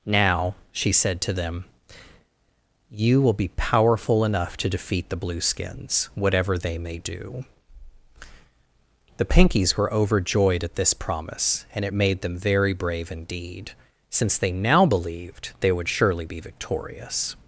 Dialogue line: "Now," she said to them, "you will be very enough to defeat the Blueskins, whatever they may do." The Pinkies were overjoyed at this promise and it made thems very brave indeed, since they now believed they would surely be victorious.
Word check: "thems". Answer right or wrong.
wrong